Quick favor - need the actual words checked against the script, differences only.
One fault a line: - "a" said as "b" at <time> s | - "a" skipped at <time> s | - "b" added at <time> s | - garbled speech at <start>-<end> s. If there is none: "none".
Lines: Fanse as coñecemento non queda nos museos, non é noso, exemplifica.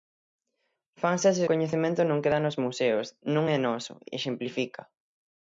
none